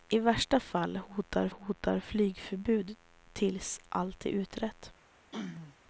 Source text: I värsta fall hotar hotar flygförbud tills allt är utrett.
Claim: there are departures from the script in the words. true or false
false